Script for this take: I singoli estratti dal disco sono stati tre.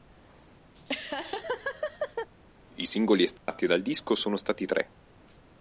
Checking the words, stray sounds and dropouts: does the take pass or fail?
fail